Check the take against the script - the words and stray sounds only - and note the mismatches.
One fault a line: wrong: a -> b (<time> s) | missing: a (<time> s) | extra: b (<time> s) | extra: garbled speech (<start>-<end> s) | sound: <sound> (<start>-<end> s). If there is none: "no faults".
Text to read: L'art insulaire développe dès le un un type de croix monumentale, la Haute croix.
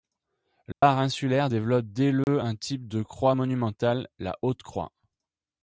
sound: dropout (0.7-0.8 s)
sound: dropout (2.2-2.3 s)
missing: un (2.5 s)